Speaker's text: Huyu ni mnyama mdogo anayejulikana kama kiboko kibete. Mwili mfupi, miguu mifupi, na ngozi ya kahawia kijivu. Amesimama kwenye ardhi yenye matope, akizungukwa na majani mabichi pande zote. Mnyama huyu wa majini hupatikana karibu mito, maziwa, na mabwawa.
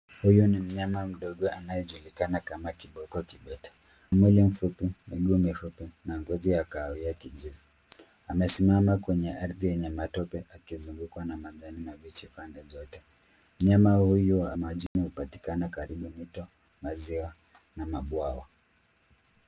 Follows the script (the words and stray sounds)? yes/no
no